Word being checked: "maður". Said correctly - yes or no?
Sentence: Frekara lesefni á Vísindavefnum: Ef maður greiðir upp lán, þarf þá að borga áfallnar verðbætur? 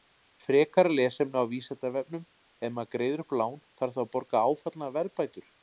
yes